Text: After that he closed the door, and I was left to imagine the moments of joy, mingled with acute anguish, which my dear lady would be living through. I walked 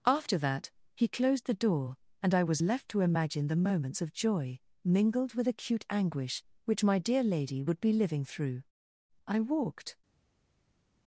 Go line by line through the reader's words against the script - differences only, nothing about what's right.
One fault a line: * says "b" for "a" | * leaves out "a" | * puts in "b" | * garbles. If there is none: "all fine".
all fine